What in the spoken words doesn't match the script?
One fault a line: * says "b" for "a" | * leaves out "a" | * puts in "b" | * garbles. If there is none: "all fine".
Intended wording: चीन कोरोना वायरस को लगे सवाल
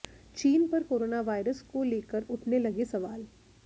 * puts in "पर"
* puts in "लेकर उठने"